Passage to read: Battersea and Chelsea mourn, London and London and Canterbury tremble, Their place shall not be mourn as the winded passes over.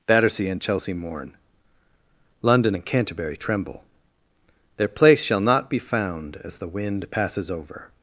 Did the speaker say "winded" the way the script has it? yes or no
no